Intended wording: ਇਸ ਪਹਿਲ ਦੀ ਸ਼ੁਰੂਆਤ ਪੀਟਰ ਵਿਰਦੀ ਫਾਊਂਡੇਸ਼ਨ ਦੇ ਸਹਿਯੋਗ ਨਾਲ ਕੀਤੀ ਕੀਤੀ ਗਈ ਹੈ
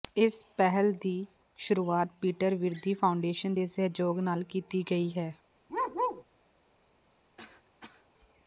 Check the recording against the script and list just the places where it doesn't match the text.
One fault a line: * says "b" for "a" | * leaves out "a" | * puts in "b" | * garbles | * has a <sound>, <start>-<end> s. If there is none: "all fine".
* leaves out "ਕੀਤੀ"
* has a bark, 5.7-6.2 s
* has a cough, 7.4-8.1 s